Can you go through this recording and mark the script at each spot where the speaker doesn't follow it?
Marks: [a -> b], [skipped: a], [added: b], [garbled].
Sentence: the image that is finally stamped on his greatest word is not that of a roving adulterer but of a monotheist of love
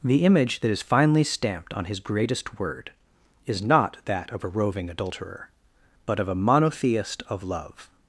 the image that is finally stamped on his greatest word is not that of a roving adulterer but of a monotheist of love